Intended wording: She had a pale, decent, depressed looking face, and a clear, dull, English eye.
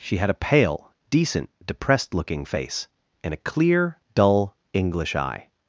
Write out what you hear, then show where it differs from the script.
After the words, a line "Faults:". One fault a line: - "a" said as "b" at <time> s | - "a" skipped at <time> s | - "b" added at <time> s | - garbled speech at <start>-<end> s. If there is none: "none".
She had a pale, decent, depressed looking face, and a clear, dull, English eye.
Faults:
none